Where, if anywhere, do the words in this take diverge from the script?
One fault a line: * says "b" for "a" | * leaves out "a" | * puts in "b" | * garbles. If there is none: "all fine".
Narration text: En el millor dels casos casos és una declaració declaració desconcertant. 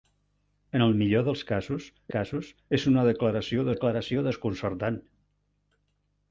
all fine